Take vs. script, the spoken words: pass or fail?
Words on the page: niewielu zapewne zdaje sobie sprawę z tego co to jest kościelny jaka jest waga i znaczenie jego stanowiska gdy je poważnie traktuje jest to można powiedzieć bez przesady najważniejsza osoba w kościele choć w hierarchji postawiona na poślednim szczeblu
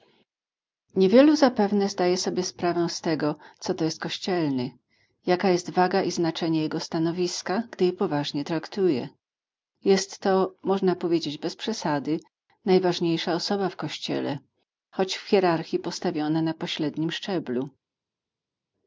pass